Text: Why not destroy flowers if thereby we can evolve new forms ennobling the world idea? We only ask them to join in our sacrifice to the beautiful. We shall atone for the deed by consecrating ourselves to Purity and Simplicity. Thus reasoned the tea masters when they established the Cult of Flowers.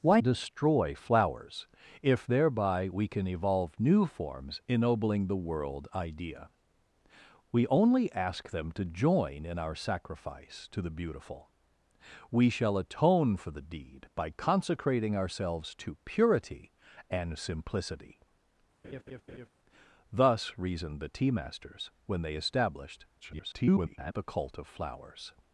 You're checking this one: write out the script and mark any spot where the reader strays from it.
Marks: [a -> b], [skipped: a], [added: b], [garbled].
Why [skipped: not] destroy flowers if thereby we can evolve new forms ennobling the world idea? We only ask them to join in our sacrifice to the beautiful. We shall atone for the deed by consecrating ourselves to Purity and Simplicity. Thus reasoned the tea masters when they established [garbled] the Cult of Flowers.